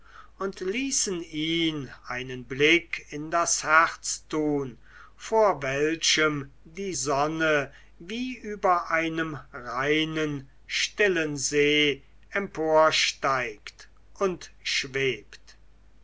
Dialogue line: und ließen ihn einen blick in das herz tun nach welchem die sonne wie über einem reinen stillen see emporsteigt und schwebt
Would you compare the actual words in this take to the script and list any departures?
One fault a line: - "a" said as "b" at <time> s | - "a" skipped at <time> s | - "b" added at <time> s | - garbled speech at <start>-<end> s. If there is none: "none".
- "nach" said as "vor" at 5.2 s